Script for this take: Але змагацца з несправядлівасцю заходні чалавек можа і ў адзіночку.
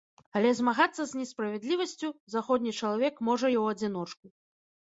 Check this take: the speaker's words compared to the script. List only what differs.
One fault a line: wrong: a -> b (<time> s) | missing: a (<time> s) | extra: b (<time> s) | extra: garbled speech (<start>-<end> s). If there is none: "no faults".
no faults